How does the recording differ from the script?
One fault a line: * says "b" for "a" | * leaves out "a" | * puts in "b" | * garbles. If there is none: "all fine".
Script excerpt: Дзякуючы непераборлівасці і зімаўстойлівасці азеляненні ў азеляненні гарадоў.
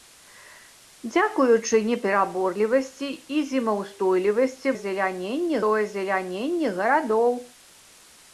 all fine